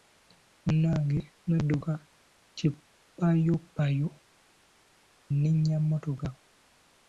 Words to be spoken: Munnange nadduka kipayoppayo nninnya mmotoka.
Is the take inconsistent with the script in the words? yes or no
no